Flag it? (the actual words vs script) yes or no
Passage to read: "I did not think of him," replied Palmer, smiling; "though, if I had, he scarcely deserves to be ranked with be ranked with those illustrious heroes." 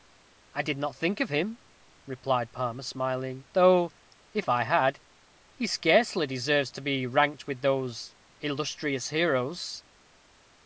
yes